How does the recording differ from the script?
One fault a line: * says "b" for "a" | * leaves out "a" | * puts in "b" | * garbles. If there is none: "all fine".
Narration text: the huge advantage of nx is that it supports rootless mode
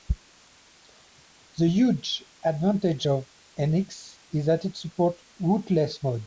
all fine